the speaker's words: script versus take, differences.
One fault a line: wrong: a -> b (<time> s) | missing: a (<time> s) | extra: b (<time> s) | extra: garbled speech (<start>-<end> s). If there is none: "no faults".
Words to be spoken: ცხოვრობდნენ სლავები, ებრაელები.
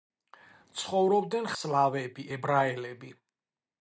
no faults